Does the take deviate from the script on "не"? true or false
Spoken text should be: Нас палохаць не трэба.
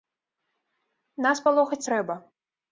true